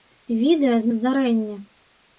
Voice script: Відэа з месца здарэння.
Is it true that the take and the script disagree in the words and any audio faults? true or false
true